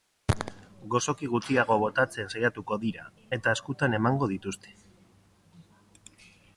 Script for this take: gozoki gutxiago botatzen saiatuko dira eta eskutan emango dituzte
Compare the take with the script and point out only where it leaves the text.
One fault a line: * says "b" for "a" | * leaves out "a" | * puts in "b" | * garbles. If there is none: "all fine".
all fine